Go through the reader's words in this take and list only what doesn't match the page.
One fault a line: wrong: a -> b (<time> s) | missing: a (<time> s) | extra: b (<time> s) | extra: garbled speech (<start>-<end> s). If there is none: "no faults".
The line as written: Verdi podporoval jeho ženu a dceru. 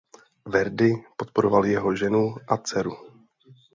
no faults